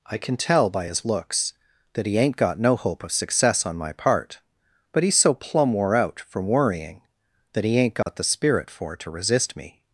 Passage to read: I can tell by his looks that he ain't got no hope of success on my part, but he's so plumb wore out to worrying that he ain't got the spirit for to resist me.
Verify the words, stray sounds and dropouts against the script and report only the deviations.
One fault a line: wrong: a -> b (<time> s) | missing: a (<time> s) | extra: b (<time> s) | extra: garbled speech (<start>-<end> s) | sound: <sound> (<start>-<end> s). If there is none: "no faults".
wrong: to -> from (6.2 s)
sound: dropout (8.0-8.1 s)